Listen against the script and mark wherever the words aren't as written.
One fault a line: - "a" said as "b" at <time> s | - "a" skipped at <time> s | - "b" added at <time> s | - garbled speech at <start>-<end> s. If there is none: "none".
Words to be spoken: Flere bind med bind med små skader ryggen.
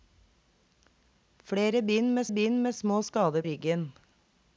none